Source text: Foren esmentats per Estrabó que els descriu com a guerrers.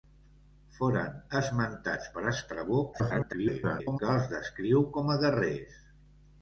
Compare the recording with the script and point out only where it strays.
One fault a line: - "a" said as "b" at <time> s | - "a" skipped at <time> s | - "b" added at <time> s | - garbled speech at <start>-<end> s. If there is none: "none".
- garbled speech at 2.9-4.0 s